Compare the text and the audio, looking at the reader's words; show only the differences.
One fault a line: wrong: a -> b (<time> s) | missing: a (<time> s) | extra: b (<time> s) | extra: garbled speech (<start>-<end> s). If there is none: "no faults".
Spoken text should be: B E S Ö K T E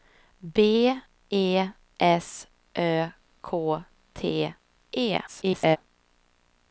extra: garbled speech (5.3-5.8 s)